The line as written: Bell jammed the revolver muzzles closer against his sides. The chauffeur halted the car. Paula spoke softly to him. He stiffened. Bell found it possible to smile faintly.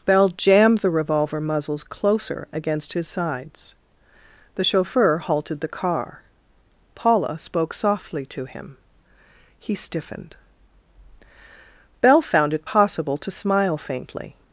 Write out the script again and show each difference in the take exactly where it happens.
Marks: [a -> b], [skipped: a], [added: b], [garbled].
Bell jammed the revolver muzzles closer against his sides. The chauffeur halted the car. Paula spoke softly to him. He stiffened. Bell found it possible to smile faintly.